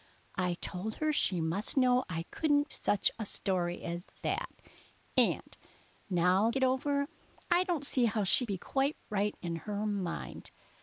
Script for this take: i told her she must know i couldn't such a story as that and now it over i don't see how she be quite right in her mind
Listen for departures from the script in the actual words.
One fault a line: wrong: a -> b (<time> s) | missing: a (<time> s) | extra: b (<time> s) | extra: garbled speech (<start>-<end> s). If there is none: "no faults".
no faults